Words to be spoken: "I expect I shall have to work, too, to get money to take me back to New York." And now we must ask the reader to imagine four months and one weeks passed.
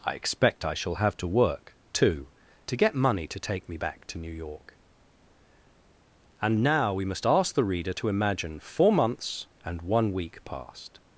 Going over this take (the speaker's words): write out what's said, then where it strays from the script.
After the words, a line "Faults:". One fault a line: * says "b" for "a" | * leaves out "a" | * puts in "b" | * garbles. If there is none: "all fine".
"I expect I shall have to work, too, to get money to take me back to New York." And now we must ask the reader to imagine four months and one week passed.
Faults:
* says "week" for "weeks"